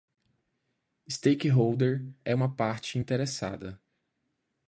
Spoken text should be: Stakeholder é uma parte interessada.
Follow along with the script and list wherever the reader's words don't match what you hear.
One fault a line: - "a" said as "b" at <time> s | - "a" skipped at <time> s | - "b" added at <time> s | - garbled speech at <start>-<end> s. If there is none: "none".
none